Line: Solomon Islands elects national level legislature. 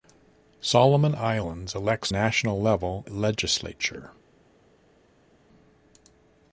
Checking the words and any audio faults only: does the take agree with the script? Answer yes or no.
yes